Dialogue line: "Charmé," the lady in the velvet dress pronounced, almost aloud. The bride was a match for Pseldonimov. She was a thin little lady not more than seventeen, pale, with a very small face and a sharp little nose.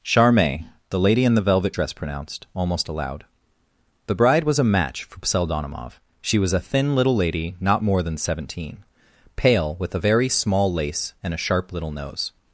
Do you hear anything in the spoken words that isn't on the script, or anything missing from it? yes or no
yes